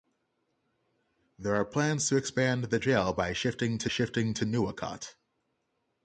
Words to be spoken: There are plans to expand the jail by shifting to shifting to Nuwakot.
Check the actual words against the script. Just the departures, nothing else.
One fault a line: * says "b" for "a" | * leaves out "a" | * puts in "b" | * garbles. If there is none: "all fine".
all fine